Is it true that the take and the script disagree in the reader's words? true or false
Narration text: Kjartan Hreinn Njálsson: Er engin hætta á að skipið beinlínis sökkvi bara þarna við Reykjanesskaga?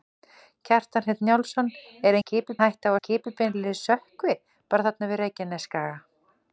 true